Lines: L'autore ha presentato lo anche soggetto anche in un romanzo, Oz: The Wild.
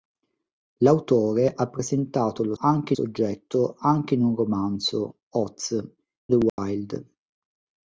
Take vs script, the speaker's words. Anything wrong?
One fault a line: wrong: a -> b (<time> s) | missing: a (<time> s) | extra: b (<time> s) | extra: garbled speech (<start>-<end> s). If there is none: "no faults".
no faults